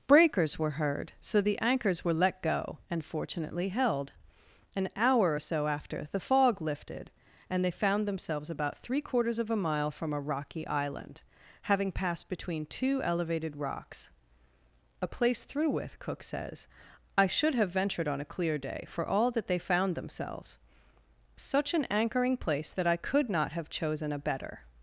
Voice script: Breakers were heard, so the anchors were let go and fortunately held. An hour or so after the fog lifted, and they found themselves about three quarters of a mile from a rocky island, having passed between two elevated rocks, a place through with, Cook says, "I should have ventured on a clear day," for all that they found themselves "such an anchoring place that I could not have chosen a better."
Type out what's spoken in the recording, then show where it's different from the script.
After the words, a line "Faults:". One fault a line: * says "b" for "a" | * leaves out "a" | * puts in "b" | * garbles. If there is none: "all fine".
Breakers were heard, so the anchors were let go and fortunately held. An hour or so after the fog lifted, and they found themselves about three quarters of a mile from a rocky island, having passed between two elevated rocks, a place through with, Cook says, "I should have ventured on a clear day," for all that they found themselves "such an anchoring place that I could not have chosen a better."
Faults:
all fine